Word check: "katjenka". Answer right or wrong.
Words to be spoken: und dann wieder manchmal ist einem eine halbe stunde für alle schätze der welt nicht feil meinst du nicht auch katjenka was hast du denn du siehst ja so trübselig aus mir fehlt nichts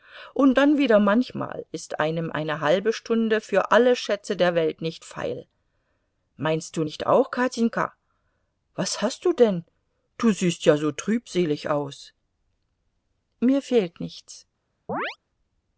right